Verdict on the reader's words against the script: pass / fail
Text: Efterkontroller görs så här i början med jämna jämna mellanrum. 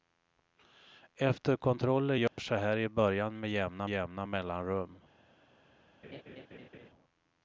pass